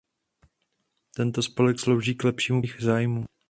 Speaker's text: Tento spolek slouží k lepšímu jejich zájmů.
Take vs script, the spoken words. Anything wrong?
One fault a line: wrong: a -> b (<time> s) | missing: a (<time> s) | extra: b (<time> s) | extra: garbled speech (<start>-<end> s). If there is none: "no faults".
no faults